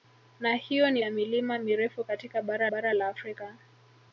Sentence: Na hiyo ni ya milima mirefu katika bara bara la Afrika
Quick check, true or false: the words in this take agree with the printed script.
true